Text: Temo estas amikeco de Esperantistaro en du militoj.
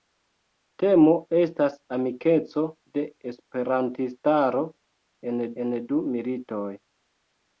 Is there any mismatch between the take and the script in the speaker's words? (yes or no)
yes